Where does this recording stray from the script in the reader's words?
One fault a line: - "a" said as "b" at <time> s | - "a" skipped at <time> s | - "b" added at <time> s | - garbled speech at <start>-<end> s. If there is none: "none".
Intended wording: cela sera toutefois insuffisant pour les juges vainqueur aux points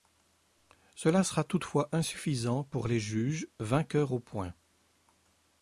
none